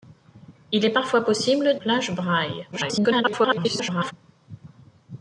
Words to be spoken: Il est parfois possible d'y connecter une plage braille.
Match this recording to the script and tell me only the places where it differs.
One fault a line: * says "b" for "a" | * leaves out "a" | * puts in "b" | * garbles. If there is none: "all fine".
* leaves out "d'y connecter une"
* garbles